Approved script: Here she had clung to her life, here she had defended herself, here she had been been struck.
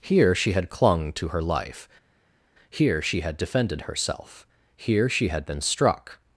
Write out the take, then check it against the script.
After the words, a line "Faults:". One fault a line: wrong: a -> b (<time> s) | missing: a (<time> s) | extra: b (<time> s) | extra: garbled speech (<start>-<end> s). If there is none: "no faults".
Here she had clung to her life, here she had defended herself, here she had been struck.
Faults:
missing: been (5.6 s)